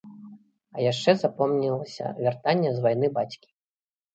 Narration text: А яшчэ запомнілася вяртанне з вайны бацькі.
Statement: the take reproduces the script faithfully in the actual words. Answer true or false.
true